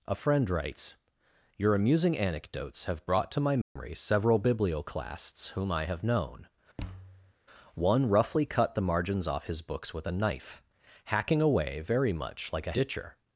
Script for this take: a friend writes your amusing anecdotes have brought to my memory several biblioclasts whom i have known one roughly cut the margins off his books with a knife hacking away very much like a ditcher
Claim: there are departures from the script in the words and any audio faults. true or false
true